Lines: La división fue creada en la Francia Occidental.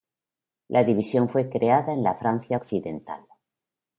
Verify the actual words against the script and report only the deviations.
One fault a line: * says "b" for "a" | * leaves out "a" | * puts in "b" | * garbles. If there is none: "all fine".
all fine